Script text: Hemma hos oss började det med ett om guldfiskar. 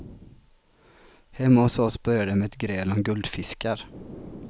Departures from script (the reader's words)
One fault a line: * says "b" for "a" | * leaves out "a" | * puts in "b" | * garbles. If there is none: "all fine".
* puts in "gräl"